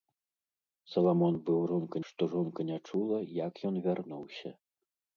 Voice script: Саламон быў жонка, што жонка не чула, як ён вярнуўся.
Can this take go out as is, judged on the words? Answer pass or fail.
pass